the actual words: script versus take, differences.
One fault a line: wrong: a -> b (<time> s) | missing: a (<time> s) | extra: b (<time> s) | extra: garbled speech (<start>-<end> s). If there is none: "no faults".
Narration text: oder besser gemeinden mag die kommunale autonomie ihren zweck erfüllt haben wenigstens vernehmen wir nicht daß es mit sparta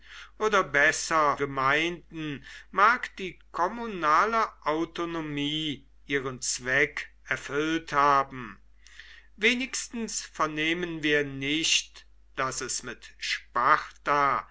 no faults